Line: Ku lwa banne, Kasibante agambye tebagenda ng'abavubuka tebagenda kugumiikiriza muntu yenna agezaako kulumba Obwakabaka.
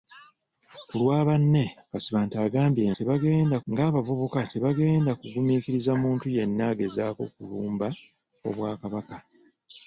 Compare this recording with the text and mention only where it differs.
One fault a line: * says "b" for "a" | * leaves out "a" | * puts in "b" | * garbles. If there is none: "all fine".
all fine